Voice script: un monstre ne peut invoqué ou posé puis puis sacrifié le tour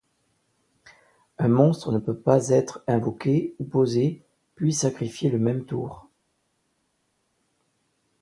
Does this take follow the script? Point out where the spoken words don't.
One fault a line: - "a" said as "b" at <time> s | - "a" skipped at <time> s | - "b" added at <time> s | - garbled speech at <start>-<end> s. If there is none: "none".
- "pas être" added at 2.1 s
- "puis" skipped at 4.7 s
- "même" added at 5.4 s